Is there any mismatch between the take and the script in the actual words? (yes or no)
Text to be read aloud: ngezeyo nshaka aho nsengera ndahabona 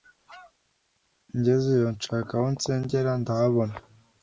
no